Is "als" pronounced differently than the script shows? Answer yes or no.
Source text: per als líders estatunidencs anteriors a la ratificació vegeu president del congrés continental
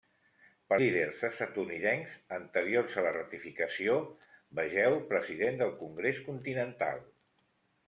yes